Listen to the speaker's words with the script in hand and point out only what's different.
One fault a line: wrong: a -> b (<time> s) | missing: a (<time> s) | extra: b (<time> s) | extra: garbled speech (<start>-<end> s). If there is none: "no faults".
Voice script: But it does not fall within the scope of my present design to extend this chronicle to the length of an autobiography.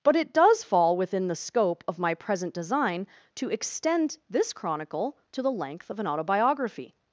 missing: not (0.6 s)